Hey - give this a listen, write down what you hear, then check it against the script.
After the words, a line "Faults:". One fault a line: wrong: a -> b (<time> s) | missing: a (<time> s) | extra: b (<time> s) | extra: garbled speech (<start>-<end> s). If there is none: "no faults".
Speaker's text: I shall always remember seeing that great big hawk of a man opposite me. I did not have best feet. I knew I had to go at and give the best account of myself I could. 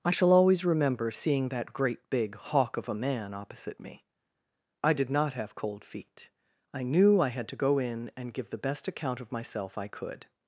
I shall always remember seeing that great big hawk of a man opposite me. I did not have cold feet. I knew I had to go in and give the best account of myself I could.
Faults:
wrong: best -> cold (5.5 s)
wrong: at -> in (7.8 s)